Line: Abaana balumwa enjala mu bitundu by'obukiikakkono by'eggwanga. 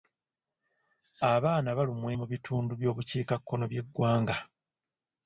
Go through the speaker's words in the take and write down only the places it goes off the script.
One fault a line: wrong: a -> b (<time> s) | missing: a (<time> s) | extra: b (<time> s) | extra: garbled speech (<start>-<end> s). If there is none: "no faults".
missing: enjala (2.1 s)